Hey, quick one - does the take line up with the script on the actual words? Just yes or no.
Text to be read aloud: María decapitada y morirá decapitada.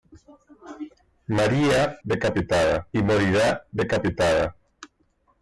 yes